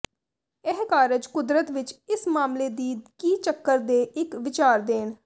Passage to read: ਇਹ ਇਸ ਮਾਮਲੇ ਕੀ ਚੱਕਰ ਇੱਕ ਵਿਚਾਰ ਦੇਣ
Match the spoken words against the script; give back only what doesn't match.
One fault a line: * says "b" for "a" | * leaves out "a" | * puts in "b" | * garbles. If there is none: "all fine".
* puts in "ਕਾਰਜ ਕੁਦਰਤ ਵਿਚ"
* puts in "ਦੀ"
* puts in "ਦੇ"